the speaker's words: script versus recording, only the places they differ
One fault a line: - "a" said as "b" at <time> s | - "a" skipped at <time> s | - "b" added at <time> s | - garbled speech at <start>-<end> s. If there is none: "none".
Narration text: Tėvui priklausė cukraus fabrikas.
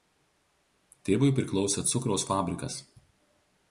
none